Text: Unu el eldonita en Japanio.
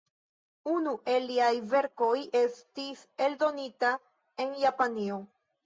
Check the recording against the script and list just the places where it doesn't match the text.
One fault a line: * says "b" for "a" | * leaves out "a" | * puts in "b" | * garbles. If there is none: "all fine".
* puts in "liaj verkoj estis"